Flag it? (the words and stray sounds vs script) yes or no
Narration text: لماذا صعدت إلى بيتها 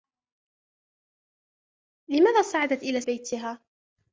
no